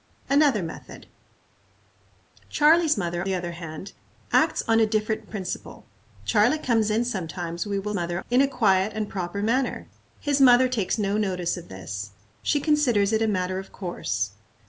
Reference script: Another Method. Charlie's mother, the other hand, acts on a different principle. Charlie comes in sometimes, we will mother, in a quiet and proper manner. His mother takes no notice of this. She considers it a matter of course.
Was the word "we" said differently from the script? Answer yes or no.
no